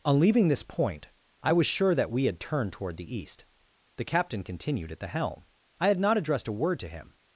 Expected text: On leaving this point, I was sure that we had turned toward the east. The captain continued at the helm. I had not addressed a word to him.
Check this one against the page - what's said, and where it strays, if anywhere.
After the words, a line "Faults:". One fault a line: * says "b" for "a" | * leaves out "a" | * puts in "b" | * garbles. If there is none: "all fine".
On leaving this point, I was sure that we had turned toward the east. The captain continued at the helm. I had not addressed a word to him.
Faults:
all fine